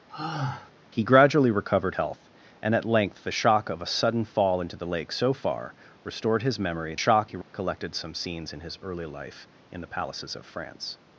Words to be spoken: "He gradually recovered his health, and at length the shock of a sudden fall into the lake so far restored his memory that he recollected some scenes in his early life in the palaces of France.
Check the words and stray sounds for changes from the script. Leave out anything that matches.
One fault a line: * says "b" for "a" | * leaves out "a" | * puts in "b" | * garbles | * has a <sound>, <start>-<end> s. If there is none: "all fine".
* has a sigh, 0.1-0.7 s
* leaves out "his"
* says "shock" for "that"
* has a dropout, 7.4-7.5 s